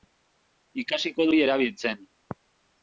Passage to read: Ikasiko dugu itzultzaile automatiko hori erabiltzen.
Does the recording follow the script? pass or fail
fail